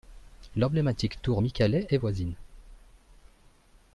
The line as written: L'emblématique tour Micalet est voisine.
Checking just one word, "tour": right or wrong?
right